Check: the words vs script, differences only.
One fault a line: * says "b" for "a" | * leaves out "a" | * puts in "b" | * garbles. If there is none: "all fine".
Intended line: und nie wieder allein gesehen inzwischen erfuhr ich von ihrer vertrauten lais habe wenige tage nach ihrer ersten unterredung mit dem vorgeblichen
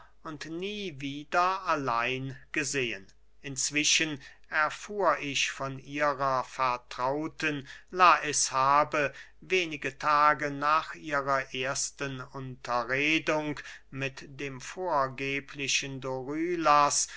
all fine